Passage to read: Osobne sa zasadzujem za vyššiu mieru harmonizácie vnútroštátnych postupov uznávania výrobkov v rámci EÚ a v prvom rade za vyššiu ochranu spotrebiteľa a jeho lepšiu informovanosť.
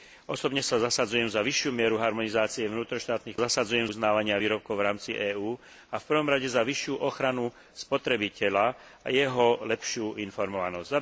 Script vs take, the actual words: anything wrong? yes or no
yes